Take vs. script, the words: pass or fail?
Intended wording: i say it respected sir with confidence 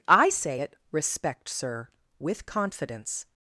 fail